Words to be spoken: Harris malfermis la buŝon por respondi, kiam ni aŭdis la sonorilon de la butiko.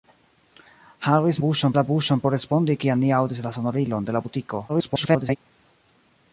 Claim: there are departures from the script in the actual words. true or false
true